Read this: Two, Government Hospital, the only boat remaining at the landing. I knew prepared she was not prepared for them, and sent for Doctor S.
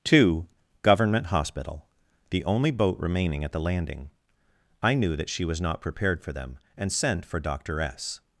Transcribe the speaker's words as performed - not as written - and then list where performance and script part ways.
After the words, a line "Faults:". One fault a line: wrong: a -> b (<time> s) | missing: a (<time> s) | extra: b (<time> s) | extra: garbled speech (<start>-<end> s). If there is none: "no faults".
Two, Government Hospital, the only boat remaining at the landing. I knew that she was not prepared for them, and sent for Doctor S.
Faults:
wrong: prepared -> that (5.2 s)